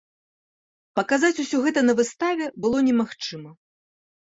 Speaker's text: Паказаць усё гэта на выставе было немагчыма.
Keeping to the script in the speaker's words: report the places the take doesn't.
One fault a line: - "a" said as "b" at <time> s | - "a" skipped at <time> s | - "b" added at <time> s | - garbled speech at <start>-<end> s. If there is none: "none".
none